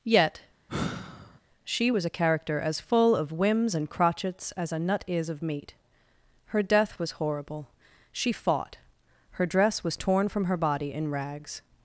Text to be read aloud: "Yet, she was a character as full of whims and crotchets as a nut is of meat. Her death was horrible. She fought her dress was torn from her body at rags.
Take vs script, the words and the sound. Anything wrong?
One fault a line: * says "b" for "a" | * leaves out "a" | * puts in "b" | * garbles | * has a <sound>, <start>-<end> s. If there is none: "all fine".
* has a sigh, 0.7-1.4 s
* says "in" for "at"